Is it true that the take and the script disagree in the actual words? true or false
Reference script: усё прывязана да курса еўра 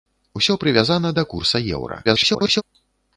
true